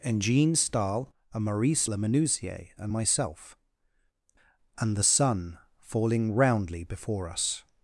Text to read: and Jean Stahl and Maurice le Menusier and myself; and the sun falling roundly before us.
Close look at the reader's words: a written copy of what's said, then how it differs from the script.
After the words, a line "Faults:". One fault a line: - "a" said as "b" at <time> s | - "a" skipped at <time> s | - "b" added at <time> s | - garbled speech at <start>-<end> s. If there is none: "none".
and Jean Stahl and Maurice le Menusier and myself; and the sun falling roundly before us.
Faults:
none